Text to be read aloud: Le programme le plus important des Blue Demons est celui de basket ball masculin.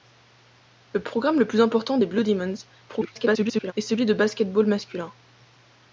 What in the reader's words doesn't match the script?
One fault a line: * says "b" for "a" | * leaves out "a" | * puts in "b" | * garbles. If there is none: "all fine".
* garbles